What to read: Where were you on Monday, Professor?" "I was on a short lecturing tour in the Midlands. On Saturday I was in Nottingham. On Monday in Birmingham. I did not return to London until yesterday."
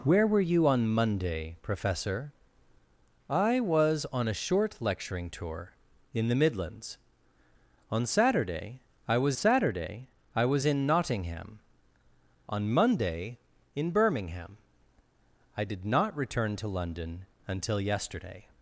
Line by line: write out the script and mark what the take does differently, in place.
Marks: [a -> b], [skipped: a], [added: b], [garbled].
Where were you on Monday, Professor?" "I was on a short lecturing tour in the Midlands. On Saturday I was [added: Saturday I was] in Nottingham. On Monday in Birmingham. I did not return to London until yesterday."